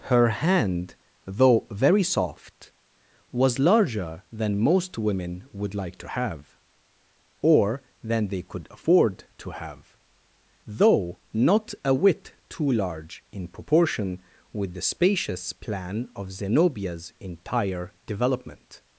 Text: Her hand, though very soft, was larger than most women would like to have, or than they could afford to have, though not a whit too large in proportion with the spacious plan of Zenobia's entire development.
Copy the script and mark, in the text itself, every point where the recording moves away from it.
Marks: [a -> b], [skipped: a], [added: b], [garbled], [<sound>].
Her hand, though very soft, was larger than most women would like to have, or than they could afford to have, though not a whit too large in proportion with the spacious plan of Zenobia's entire development.